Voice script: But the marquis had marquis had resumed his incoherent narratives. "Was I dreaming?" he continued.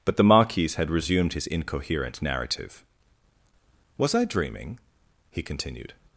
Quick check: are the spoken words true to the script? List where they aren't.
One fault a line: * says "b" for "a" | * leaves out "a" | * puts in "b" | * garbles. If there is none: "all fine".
* leaves out "marquis had"
* says "narrative" for "narratives"